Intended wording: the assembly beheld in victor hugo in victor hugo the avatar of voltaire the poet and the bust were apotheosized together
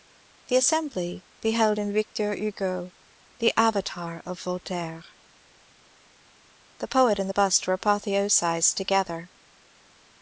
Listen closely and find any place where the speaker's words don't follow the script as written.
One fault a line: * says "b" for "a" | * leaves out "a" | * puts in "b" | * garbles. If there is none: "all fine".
* leaves out "in victor hugo"